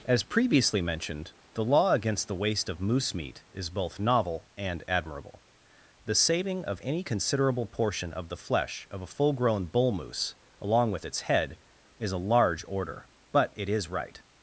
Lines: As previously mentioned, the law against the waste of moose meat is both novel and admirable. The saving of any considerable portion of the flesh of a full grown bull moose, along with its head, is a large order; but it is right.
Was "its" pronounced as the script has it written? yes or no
yes